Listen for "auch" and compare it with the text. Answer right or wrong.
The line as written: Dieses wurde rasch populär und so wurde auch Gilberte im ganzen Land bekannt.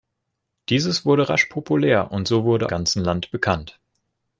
wrong